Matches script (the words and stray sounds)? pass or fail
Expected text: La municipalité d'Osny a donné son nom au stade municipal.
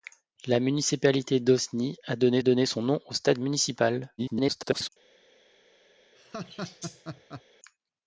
fail